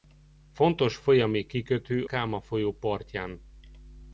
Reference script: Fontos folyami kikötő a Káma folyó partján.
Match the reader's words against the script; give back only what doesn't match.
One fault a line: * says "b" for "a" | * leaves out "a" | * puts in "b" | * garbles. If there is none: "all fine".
* leaves out "a"